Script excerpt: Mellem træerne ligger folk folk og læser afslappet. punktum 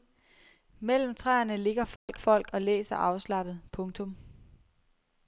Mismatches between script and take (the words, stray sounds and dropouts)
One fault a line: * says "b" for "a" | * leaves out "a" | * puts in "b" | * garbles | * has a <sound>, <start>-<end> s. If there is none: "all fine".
* has a dropout, 2.0-2.1 s